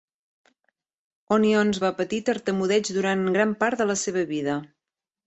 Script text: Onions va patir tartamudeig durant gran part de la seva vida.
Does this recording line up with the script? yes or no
yes